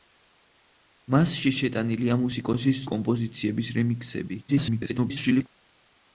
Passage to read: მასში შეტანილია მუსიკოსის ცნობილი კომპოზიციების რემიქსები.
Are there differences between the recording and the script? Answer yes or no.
yes